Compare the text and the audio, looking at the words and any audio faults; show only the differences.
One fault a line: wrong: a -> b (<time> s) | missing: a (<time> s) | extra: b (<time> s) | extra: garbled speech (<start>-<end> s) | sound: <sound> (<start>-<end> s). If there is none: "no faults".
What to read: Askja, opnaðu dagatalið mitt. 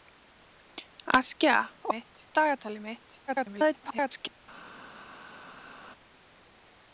wrong: opnaðu -> mitt (1.9 s)
extra: garbled speech (3.3-4.4 s)